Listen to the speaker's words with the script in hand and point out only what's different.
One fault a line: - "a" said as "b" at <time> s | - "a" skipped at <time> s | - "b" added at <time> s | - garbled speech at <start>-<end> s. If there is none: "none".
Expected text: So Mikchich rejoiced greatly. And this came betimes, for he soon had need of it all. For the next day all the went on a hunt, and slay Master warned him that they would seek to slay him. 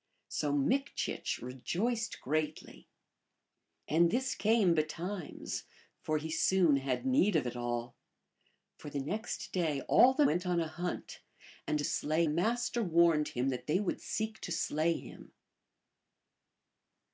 none